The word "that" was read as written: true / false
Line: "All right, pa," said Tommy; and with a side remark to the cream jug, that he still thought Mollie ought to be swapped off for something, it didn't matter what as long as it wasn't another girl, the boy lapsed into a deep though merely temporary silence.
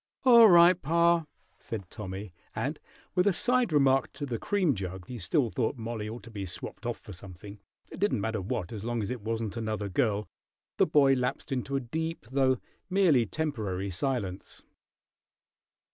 false